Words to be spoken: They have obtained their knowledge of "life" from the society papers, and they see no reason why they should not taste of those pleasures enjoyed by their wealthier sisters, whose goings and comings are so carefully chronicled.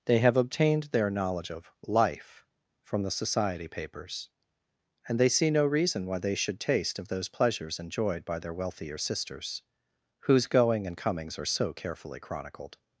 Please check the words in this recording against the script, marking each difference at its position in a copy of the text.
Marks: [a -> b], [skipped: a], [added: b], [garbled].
They have obtained their knowledge of "life" from the society papers, and they see no reason why they should [skipped: not] taste of those pleasures enjoyed by their wealthier sisters, whose [goings -> going] and comings are so carefully chronicled.